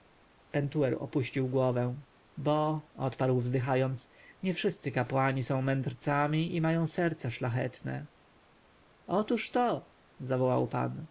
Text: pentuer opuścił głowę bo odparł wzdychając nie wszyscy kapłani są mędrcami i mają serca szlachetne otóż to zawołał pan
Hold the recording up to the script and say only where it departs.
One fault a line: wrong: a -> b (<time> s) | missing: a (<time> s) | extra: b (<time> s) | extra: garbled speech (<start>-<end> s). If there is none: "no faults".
no faults